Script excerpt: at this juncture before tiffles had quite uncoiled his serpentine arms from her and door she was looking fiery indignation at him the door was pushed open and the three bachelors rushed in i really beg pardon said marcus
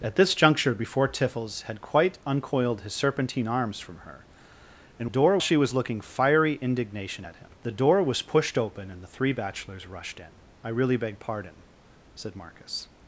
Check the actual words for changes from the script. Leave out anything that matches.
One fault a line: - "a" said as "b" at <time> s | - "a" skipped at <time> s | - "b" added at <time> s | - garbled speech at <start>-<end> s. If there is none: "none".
none